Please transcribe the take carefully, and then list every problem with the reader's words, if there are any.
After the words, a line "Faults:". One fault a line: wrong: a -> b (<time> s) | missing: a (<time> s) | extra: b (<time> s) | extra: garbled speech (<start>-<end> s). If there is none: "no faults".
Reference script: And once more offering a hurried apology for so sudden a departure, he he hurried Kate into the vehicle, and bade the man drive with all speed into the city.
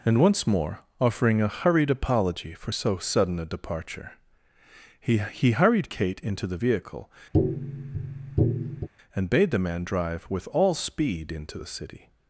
And once more offering a hurried apology for so sudden a departure, he he hurried Kate into the vehicle, and bade the man drive with all speed into the city.
Faults:
no faults